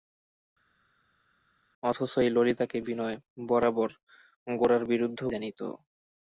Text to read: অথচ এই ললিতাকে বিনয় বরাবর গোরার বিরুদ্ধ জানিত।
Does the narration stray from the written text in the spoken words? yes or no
no